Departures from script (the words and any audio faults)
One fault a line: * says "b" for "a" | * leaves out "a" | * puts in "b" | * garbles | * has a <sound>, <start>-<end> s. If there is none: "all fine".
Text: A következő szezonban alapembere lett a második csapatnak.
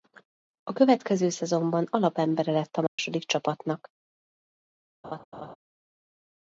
* has a dropout, 2.9-3.0 s
* has a laugh, 5.0-5.6 s